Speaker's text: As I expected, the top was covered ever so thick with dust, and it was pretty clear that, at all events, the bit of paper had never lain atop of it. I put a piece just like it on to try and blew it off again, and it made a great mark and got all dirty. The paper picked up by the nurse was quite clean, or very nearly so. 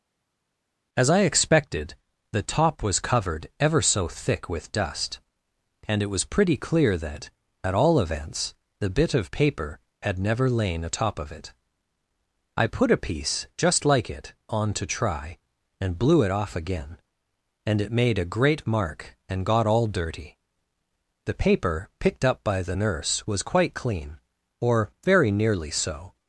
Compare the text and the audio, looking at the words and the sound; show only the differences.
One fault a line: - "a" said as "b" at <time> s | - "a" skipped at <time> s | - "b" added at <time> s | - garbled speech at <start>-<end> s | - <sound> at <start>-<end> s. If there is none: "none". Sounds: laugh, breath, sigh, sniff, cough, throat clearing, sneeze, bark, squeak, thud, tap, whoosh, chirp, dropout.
none